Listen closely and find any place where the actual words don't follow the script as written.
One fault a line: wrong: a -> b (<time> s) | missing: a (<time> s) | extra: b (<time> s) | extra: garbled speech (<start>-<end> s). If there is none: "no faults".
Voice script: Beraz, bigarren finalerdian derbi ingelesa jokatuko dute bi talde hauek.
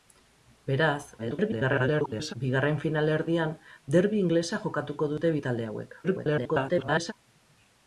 extra: garbled speech (1.2-2.3 s)
extra: garbled speech (6.0-7.1 s)